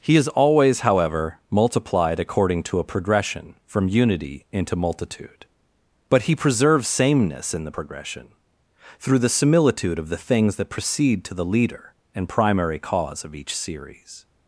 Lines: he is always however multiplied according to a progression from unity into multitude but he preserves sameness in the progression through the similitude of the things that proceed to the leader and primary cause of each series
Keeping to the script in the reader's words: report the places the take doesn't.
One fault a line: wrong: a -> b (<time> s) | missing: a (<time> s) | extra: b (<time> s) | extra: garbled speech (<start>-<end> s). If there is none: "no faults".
no faults